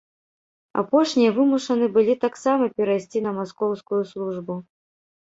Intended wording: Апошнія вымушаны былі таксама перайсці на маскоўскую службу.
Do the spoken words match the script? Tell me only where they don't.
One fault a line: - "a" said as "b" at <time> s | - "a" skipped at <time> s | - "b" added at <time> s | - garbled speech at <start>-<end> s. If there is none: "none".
none